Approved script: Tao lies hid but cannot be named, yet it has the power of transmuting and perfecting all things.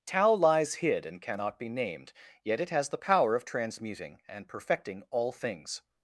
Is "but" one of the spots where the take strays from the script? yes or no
yes